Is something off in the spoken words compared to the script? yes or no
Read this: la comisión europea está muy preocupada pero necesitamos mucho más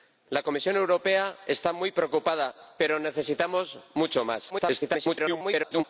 yes